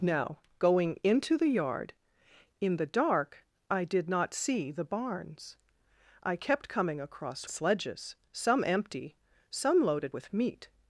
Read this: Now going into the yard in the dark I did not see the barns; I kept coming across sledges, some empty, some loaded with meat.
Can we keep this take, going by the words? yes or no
yes